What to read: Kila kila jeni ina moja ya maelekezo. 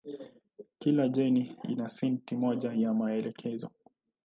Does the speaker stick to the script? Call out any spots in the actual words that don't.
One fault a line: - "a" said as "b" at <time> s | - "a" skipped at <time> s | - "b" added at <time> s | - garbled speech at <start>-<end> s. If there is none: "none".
- "kila" skipped at 1.1 s
- "seti" added at 1.9 s